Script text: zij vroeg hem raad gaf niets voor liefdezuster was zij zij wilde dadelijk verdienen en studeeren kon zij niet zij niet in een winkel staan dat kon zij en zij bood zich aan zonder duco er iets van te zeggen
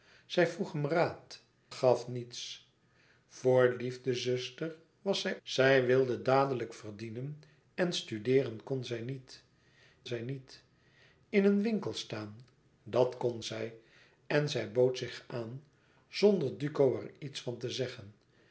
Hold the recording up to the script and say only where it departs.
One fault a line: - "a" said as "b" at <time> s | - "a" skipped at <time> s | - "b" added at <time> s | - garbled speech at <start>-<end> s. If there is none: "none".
none